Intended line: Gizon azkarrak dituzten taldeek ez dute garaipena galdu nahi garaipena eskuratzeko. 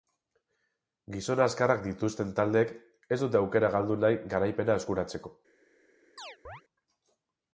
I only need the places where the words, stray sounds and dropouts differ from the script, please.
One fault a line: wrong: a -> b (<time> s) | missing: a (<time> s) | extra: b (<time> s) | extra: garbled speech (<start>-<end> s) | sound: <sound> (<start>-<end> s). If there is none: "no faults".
wrong: garaipena -> aukera (3.4 s)
sound: chirp (6.2-6.6 s)